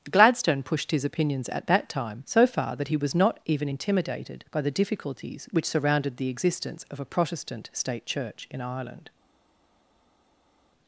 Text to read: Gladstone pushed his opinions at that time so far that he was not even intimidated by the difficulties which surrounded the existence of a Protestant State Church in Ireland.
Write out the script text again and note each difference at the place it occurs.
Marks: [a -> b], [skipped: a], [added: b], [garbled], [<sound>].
Gladstone pushed his opinions at that time so far that he was not even intimidated by the difficulties which surrounded the existence of a Protestant State Church in Ireland.